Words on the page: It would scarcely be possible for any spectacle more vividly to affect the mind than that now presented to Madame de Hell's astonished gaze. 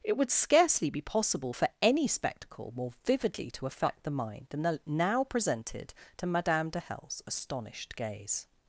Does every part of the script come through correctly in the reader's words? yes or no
no